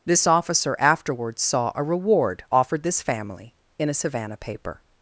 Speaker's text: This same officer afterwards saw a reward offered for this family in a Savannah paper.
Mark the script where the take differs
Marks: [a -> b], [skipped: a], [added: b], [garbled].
This [skipped: same] officer afterwards saw a reward offered [skipped: for] this family in a Savannah paper.